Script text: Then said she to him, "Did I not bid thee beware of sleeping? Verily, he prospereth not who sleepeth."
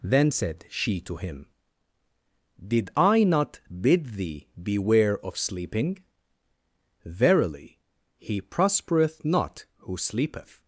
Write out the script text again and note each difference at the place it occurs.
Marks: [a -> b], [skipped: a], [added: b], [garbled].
Then said she to him, "Did I not bid thee beware of sleeping? Verily, he prospereth not who sleepeth."